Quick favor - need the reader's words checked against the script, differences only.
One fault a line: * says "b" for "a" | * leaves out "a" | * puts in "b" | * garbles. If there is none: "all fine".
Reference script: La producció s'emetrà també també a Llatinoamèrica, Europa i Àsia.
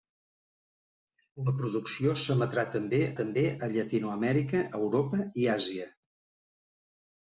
all fine